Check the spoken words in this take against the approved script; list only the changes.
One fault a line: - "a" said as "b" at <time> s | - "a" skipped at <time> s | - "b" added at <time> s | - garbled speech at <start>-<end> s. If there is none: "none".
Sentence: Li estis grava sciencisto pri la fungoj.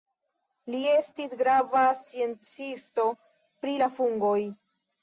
none